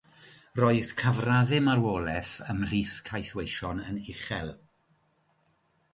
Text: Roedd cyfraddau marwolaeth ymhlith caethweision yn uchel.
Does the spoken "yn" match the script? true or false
true